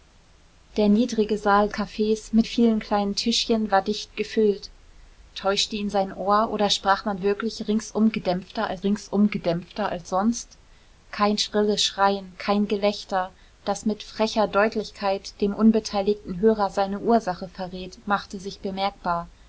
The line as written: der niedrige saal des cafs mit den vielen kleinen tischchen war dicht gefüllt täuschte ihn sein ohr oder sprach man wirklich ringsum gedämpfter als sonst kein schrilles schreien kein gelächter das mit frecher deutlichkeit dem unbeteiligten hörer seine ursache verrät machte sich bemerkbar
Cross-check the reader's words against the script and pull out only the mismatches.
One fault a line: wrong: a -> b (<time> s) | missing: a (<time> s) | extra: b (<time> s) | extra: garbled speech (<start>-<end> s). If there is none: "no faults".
missing: des (1.7 s)
missing: den (2.5 s)
extra: ringsum gedämpfter als (8.8 s)